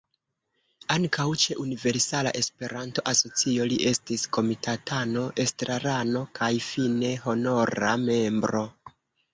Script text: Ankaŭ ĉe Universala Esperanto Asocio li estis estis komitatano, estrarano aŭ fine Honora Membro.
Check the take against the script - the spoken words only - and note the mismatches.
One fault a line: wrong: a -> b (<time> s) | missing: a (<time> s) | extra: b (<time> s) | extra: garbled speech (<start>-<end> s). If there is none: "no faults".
missing: estis (4.3 s)
wrong: aŭ -> kaj (6.4 s)